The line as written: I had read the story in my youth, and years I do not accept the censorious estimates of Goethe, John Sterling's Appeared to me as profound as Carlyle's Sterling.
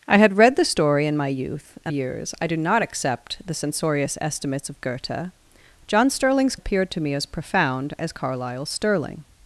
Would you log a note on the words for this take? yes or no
no